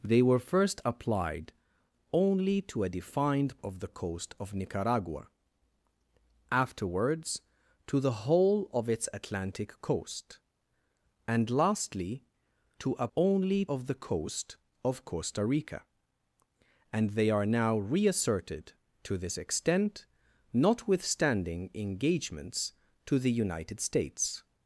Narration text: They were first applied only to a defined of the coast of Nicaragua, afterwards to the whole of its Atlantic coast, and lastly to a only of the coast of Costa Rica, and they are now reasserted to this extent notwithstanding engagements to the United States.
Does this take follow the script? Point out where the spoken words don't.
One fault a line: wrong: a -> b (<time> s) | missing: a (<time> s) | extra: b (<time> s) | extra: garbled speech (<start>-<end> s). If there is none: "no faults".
no faults